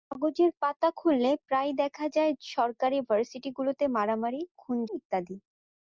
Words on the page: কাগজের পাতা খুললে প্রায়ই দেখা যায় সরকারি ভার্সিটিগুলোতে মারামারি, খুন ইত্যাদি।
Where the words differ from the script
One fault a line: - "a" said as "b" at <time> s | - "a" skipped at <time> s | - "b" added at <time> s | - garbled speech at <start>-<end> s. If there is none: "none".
none